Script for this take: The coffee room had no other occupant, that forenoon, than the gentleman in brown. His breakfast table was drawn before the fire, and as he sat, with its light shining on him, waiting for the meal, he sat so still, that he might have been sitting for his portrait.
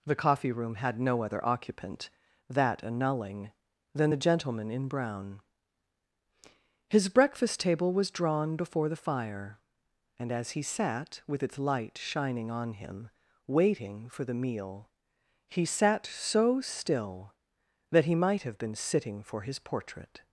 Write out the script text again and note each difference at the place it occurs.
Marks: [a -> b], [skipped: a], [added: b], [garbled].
The coffee room had no other occupant, that [forenoon, -> annulling] than the gentleman in brown. His breakfast table was drawn before the fire, and as he sat, with its light shining on him, waiting for the meal, he sat so still, that he might have been sitting for his portrait.